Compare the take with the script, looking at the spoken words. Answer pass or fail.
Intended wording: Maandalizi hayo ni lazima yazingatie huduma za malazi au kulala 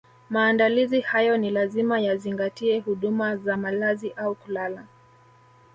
pass